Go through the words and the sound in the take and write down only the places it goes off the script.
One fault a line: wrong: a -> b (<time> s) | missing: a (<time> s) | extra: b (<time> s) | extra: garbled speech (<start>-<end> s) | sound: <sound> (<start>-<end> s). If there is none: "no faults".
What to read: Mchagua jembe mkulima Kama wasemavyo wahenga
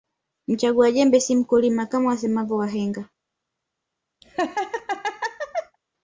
extra: si (1.2 s)
sound: laugh (4.2-5.8 s)